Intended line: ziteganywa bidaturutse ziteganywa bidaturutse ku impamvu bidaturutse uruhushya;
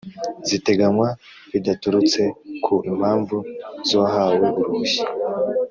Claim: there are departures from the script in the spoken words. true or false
true